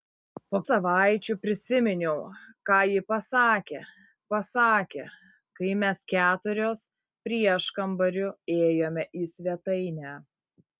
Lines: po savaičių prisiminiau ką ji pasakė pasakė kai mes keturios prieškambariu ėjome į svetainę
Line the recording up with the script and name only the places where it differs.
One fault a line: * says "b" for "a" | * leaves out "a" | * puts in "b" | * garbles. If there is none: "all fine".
all fine